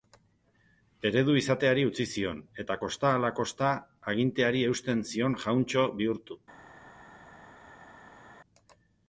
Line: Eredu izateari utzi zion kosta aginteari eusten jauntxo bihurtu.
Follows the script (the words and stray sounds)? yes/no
no